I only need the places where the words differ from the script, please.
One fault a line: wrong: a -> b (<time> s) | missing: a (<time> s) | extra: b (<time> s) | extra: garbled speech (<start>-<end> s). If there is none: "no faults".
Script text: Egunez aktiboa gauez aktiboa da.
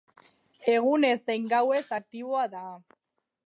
wrong: aktiboa -> zein (1.3 s)